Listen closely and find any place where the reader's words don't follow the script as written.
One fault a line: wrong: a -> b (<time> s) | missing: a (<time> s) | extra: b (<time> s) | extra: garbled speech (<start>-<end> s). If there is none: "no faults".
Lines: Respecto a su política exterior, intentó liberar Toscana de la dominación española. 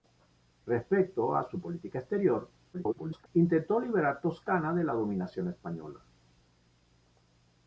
extra: garbled speech (2.7-3.3 s)